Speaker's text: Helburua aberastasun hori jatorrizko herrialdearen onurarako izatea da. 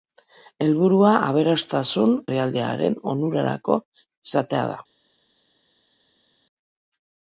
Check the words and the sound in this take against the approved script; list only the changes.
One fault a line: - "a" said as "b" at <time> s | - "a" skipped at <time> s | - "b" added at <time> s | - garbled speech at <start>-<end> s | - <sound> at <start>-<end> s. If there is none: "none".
- "hori jatorrizko" skipped at 2.1 s